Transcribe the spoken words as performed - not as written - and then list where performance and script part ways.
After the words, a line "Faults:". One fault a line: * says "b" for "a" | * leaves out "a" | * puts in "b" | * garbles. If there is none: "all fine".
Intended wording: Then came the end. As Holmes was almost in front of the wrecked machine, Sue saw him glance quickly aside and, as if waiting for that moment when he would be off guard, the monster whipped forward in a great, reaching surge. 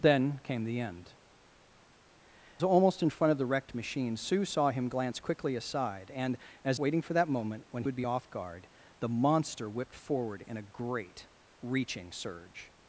Then came the end. Almost in front of the wrecked machine, Sue saw him glance quickly aside and, as waiting for that moment when would be off guard, the monster whipped forward in a great, reaching surge.
Faults:
* leaves out "As Holmes was"
* leaves out "if"
* leaves out "he"